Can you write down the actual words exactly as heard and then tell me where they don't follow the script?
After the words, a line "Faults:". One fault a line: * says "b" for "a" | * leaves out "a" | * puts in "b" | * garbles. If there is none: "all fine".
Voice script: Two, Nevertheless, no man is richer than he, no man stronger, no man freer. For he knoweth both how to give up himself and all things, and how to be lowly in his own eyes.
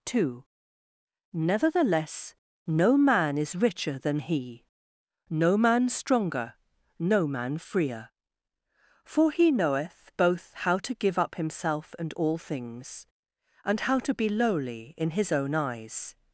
Two, Nevertheless, no man is richer than he, no man stronger, no man freer. For he knoweth both how to give up himself and all things, and how to be lowly in his own eyes.
Faults:
all fine